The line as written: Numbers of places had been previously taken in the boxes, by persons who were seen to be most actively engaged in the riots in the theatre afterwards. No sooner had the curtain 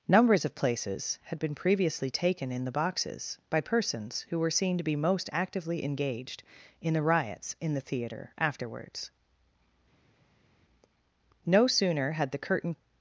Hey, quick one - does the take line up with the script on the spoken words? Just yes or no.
yes